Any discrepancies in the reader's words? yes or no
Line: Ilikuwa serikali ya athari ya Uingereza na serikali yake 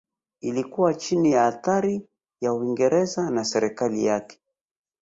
yes